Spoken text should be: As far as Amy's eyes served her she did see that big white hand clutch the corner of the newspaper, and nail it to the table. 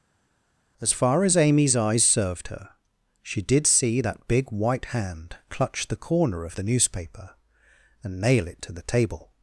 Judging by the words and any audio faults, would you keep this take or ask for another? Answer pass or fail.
pass